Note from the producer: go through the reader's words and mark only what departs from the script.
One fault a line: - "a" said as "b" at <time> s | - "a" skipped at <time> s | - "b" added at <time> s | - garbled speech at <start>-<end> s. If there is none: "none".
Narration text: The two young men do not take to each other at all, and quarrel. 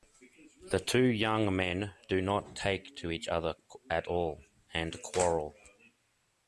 none